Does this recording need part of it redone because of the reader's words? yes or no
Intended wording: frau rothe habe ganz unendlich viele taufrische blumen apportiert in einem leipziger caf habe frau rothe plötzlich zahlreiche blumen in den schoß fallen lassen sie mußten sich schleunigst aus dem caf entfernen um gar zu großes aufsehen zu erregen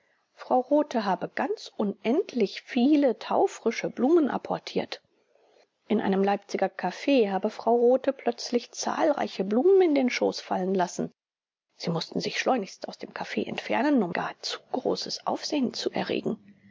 no